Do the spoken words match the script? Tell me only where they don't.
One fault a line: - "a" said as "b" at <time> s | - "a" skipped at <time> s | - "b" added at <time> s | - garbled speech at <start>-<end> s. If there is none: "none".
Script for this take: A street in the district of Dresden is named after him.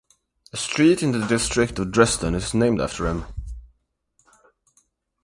none